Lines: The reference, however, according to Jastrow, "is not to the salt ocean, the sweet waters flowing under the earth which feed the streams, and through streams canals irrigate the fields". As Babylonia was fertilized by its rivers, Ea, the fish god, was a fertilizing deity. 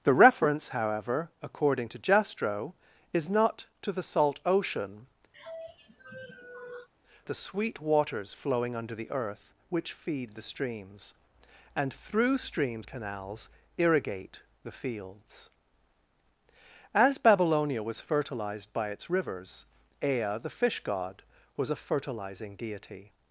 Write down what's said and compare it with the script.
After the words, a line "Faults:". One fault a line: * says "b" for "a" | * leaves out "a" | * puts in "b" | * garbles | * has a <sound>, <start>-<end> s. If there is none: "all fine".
The reference, however, according to Jastrow, "is not to the salt ocean, the sweet waters flowing under the earth which feed the streams, and through streams canals irrigate the fields". As Babylonia was fertilized by its rivers, Ea, the fish god, was a fertilizing deity.
Faults:
* has a sigh, 5.3-6.9 s